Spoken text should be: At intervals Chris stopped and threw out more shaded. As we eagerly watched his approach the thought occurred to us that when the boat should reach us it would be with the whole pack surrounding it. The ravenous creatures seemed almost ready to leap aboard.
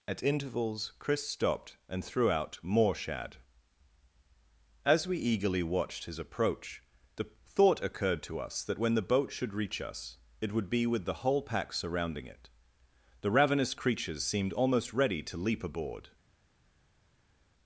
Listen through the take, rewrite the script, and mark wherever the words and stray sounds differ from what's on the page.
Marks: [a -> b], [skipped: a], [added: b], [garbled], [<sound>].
At intervals Chris stopped and threw out more [shaded. -> shad] As we eagerly watched his approach the thought occurred to us that when the boat should reach us it would be with the whole pack surrounding it. The ravenous creatures seemed almost ready to leap aboard.